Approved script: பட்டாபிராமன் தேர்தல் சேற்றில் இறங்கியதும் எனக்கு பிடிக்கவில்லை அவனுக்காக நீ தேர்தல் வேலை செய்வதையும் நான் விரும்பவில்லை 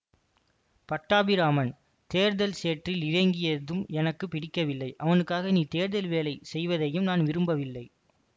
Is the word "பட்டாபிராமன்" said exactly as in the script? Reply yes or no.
yes